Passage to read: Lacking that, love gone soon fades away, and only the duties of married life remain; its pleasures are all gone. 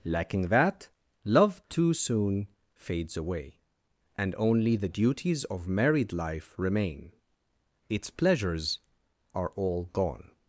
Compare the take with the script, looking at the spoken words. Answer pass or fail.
fail